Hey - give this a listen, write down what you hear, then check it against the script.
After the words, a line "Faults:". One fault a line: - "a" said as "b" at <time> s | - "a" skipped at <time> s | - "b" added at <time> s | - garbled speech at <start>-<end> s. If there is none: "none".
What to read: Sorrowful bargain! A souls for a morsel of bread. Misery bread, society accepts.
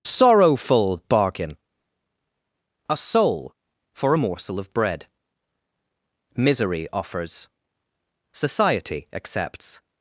Sorrowful bargain! A soul for a morsel of bread. Misery offers, society accepts.
Faults:
- "souls" said as "soul" at 3.0 s
- "bread" said as "offers" at 6.9 s